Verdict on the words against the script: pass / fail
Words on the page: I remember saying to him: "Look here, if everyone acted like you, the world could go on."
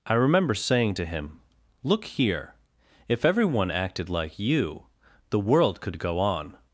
pass